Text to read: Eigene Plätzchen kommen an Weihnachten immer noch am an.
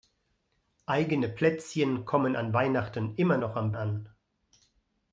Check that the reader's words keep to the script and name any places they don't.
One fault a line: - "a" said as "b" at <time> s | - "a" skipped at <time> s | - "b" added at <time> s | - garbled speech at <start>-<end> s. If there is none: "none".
none